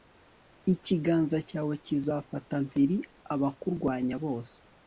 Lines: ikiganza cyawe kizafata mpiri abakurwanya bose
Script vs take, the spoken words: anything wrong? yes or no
no